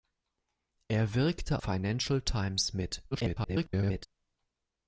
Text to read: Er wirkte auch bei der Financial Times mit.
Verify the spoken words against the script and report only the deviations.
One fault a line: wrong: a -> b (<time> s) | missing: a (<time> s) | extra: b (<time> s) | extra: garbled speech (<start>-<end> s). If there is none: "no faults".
missing: auch bei der (1.6 s)
extra: garbled speech (3.1-4.1 s)